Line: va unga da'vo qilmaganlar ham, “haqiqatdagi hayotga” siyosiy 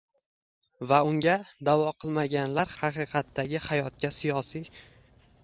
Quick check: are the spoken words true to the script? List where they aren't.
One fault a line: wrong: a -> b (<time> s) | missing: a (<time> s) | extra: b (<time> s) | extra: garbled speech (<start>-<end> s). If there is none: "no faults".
missing: ham (2.7 s)